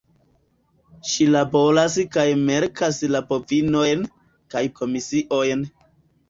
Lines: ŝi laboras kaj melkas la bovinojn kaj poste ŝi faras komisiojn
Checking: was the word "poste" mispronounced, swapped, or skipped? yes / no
yes